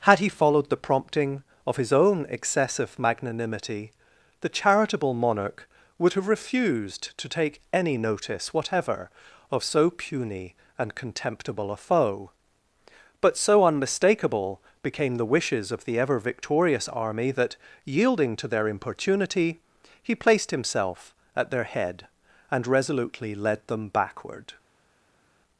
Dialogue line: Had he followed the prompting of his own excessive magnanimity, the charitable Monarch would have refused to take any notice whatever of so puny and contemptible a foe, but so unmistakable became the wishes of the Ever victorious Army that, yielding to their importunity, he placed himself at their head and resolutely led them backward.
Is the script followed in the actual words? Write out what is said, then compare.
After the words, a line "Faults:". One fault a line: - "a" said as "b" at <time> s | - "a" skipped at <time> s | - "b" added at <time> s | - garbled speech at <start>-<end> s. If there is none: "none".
Had he followed the prompting of his own excessive magnanimity, the charitable Monarch would have refused to take any notice whatever of so puny and contemptible a foe, but so unmistakable became the wishes of the Ever victorious Army that, yielding to their importunity, he placed himself at their head and resolutely led them backward.
Faults:
none